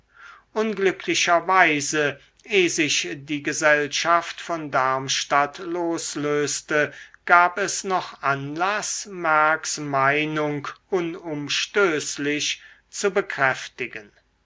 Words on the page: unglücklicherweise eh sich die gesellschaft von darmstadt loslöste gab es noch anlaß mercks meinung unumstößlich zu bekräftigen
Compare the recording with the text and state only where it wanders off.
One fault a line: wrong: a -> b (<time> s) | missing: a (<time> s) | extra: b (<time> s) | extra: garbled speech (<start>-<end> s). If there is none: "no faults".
no faults